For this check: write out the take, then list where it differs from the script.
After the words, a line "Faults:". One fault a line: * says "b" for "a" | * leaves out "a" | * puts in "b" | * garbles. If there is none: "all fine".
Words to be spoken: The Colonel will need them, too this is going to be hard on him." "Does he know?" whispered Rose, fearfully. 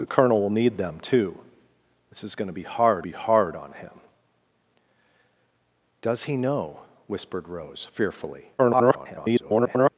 The Colonel will need them, too this is going to be hard be hard on him." "Does he know?" whispered Rose, fearfully. [garbled]
Faults:
* puts in "be hard"
* garbles